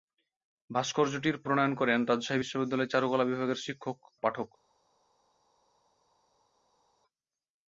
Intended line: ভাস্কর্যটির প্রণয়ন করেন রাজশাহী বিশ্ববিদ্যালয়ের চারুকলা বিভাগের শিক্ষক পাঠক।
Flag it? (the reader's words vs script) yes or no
no